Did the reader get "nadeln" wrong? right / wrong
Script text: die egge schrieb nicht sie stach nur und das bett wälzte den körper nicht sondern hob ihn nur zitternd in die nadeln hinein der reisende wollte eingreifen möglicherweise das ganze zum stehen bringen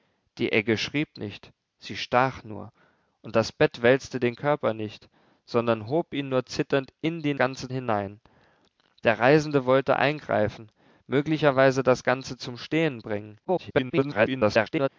wrong